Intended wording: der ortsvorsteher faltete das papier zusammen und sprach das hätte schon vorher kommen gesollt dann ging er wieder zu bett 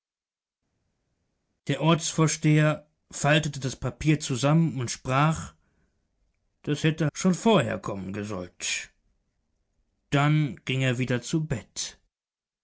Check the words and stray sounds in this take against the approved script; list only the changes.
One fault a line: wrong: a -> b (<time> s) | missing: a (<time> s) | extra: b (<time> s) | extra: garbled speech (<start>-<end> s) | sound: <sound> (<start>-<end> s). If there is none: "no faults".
no faults